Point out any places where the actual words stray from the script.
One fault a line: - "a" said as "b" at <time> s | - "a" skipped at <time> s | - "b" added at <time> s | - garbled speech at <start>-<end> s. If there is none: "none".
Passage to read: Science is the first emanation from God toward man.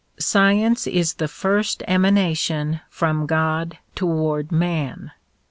none